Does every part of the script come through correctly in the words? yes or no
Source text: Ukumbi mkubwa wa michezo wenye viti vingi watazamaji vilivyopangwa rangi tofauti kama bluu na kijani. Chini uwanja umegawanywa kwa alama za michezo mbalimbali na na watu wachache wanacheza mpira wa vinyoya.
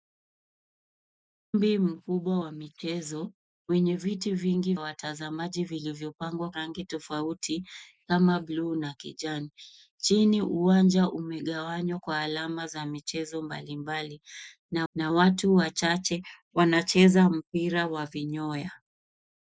yes